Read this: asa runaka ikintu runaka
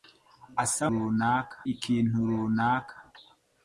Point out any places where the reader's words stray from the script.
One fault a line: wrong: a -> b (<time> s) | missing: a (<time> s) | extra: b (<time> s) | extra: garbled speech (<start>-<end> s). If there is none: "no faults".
no faults